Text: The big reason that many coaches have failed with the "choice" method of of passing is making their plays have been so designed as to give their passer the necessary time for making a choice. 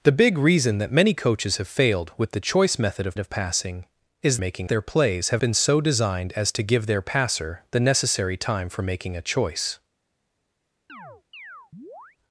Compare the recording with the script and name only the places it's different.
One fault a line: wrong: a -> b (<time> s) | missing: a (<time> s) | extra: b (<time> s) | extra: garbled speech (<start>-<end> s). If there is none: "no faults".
no faults